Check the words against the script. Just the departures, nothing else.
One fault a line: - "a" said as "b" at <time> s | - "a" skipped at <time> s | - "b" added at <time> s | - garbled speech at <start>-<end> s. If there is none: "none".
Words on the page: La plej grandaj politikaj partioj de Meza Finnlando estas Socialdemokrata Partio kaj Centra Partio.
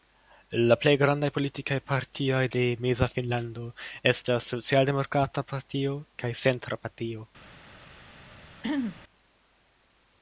none